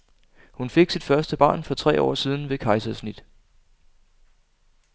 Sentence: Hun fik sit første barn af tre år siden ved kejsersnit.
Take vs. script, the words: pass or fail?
fail